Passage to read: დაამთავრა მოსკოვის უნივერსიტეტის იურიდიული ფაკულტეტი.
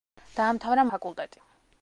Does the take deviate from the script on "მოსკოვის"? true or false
true